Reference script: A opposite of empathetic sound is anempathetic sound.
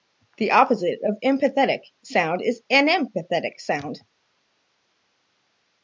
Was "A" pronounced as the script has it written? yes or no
no